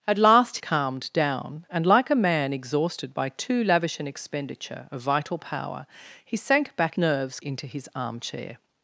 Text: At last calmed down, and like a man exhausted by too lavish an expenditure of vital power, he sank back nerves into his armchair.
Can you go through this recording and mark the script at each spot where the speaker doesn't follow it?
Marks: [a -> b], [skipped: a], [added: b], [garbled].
At last calmed down, and like a man exhausted by too lavish an expenditure of vital power, he sank back nerves into his armchair.